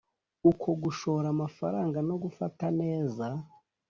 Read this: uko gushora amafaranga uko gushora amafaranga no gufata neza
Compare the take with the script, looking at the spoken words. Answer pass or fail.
fail